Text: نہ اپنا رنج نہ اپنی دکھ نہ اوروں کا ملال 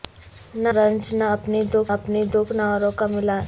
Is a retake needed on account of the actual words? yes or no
yes